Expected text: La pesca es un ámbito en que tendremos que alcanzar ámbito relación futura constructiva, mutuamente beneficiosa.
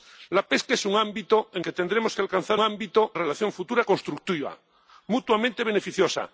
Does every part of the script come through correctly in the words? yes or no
yes